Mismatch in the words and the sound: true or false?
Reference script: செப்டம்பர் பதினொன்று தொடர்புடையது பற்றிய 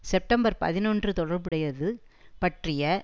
true